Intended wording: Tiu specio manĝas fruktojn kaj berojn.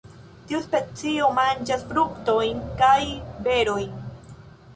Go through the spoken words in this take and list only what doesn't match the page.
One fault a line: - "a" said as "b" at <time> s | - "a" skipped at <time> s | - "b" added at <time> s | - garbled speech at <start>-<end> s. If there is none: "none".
none